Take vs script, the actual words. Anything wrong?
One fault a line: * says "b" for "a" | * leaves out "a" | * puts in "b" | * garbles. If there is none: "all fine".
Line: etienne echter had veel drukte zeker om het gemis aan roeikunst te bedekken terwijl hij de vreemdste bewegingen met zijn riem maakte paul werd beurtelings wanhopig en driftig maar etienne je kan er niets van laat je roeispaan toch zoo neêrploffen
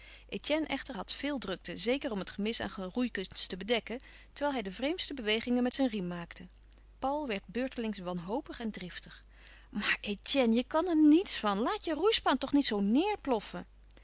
* puts in "niet"